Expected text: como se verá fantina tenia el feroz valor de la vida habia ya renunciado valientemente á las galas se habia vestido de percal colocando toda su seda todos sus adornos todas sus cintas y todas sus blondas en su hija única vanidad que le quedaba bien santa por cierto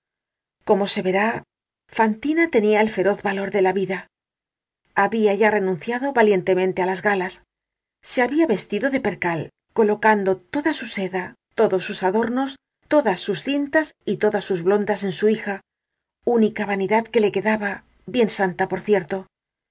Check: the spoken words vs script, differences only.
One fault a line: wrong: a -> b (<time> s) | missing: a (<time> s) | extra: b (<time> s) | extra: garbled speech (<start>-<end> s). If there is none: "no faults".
no faults